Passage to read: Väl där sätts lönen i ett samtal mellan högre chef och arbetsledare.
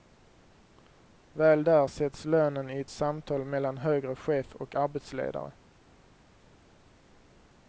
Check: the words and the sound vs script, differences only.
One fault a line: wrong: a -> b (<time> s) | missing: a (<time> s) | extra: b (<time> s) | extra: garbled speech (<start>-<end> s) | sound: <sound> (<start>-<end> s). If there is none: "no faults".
no faults